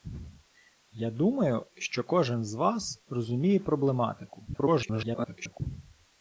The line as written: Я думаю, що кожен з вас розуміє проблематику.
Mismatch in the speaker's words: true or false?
true